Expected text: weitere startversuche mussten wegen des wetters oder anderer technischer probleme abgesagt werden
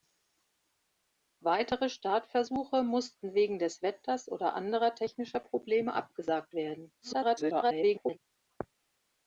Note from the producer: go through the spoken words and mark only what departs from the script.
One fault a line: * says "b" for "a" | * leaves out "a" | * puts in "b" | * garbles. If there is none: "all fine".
* garbles